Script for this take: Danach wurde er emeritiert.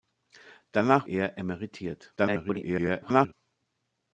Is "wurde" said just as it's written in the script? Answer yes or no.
no